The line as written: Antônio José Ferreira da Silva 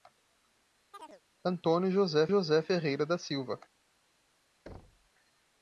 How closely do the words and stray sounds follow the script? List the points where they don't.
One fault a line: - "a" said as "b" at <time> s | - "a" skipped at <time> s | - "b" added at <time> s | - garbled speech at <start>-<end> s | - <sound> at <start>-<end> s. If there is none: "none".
- chirp at 0.9-1.2 s
- "José" added at 2.3 s
- thud at 4.7-5.1 s